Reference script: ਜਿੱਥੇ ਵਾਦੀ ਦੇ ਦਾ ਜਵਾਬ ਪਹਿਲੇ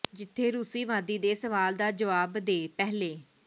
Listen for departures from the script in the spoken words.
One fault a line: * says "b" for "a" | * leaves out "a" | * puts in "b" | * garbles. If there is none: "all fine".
* puts in "ਰੂਸੀ"
* puts in "ਸਵਾਲ"
* puts in "ਦੇ"